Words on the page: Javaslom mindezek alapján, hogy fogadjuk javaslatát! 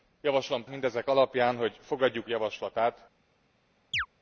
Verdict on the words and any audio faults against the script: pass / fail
fail